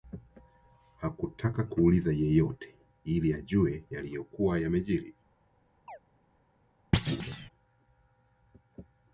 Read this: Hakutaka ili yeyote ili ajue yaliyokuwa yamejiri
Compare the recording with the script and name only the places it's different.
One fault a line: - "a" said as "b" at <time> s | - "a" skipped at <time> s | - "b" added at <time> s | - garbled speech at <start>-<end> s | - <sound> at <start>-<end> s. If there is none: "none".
- "ili" said as "kuuliza" at 1.6 s
- chirp at 5.9-6.0 s
- thud at 6.9-7.5 s